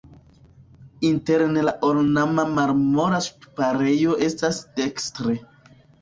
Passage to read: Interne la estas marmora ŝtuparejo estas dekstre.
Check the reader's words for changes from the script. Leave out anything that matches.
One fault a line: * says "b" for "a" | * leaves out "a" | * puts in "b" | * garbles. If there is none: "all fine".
* says "ornama" for "estas"